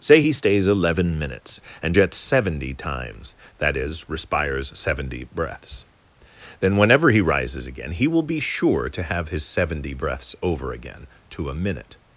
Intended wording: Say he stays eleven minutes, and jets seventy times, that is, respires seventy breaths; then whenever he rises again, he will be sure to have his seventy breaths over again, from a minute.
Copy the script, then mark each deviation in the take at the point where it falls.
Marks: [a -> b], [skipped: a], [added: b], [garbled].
Say he stays eleven minutes, and jets seventy times, that is, respires seventy breaths; then whenever he rises again, he will be sure to have his seventy breaths over again, [from -> to] a minute.